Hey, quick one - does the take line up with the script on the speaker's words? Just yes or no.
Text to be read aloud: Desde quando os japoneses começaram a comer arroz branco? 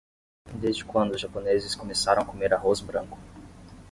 yes